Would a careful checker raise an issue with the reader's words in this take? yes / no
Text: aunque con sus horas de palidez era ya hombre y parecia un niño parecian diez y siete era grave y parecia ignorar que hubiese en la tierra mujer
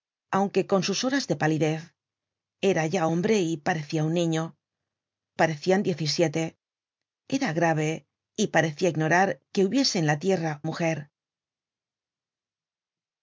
no